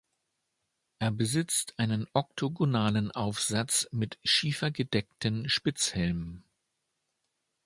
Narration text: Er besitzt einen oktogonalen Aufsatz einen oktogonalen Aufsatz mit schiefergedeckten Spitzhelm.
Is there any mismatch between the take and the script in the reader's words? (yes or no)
yes